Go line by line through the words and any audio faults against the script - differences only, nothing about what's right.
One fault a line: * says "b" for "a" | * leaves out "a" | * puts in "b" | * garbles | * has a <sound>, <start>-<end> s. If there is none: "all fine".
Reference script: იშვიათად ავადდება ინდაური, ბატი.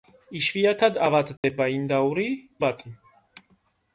* has a dropout, 1.4-1.4 s